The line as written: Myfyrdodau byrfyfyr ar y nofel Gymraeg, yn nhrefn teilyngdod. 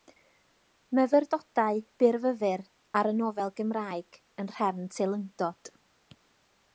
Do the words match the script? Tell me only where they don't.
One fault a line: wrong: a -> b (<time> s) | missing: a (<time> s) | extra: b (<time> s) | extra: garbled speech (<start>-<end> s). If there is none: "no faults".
no faults